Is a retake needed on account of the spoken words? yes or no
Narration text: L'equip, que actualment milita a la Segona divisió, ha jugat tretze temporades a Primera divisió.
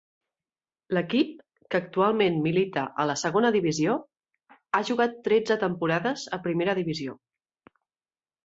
no